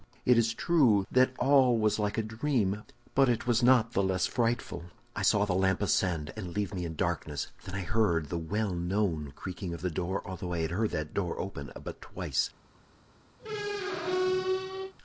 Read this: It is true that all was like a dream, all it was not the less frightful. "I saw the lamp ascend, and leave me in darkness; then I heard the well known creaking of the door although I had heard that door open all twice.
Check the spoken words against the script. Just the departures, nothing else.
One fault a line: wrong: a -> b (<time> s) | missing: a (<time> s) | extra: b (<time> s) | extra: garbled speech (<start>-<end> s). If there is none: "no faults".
wrong: all -> but (3.1 s)
wrong: all -> but (11.8 s)